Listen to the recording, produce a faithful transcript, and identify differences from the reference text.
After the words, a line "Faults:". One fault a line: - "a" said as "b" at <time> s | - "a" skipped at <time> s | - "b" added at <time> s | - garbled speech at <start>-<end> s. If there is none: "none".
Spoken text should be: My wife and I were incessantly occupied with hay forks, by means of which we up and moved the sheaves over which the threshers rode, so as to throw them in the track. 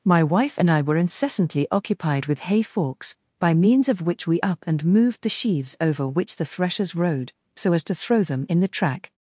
My wife and I were incessantly occupied with hay forks, by means of which we up and moved the sheaves over which the threshers rode, so as to throw them in the track.
Faults:
none